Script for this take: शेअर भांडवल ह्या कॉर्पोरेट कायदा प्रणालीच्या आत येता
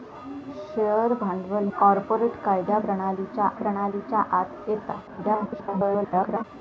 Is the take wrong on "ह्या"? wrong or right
wrong